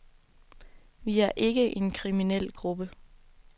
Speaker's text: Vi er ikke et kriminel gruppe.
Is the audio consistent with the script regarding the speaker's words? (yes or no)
no